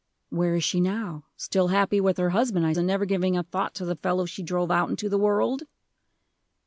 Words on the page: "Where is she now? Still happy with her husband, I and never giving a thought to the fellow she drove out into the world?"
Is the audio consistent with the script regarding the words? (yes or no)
yes